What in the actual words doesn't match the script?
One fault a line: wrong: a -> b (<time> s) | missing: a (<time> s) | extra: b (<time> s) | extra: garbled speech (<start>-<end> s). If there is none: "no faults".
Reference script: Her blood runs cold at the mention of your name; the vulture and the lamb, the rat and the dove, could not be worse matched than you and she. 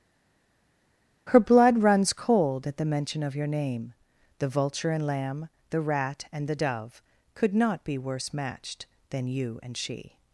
missing: the (5.1 s)